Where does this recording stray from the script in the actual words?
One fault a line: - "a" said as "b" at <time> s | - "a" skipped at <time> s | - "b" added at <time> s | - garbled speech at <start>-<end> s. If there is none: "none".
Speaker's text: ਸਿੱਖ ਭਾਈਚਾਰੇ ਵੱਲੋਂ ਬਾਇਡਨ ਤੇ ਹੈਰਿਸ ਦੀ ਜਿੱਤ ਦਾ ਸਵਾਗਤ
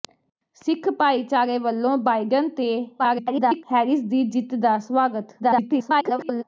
- garbled speech at 3.0-3.6 s
- garbled speech at 5.4-6.4 s